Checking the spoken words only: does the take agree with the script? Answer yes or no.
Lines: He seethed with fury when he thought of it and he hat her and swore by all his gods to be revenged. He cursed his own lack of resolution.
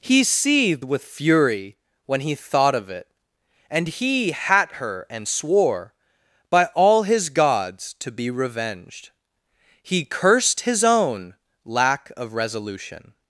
yes